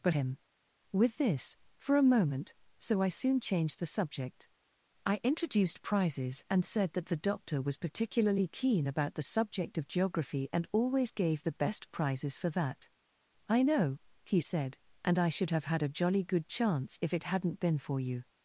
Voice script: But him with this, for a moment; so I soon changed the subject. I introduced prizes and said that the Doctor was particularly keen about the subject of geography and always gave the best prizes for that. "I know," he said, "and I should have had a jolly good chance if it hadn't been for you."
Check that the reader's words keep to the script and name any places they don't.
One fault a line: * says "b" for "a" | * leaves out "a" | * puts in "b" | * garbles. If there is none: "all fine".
all fine